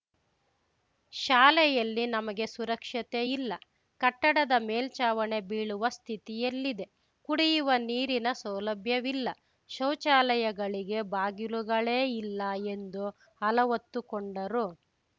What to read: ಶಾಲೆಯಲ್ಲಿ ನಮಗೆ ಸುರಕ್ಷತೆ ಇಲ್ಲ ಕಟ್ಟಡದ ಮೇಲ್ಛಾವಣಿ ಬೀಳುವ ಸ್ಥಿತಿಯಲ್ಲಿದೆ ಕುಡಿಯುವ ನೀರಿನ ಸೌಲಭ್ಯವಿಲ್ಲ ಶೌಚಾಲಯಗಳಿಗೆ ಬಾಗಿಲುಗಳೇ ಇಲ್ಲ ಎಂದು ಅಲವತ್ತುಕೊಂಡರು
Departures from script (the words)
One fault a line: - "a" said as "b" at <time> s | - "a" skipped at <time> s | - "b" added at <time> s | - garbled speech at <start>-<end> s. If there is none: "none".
none